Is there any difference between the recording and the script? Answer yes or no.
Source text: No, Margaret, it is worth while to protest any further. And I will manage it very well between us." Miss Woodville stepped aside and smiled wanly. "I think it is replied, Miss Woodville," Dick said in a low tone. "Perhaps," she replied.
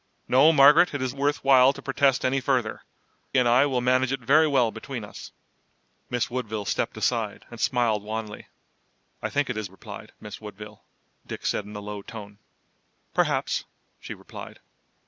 no